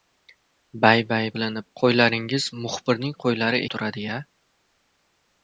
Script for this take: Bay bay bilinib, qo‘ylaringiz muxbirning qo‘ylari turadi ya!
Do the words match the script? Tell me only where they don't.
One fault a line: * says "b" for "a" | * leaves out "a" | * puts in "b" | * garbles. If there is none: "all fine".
all fine